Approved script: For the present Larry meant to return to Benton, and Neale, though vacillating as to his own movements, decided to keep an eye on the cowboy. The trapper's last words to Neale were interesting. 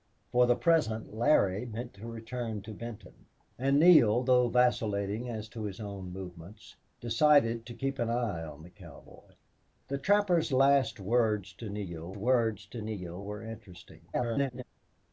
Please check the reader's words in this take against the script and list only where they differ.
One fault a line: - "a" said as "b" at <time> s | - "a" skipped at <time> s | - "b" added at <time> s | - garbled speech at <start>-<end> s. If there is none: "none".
- "words to Neale" added at 12.1 s
- garbled speech at 14.1-14.6 s